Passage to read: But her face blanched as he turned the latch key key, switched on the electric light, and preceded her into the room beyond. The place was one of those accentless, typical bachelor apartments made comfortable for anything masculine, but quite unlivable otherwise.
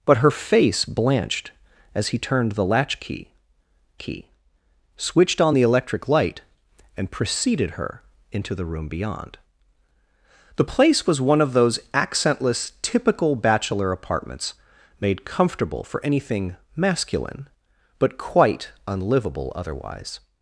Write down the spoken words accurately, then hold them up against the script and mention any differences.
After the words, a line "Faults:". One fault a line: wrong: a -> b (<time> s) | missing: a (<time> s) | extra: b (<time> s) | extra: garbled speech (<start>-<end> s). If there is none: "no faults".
But her face blanched as he turned the latch key key, switched on the electric light, and preceded her into the room beyond. The place was one of those accentless, typical bachelor apartments made comfortable for anything masculine, but quite unlivable otherwise.
Faults:
no faults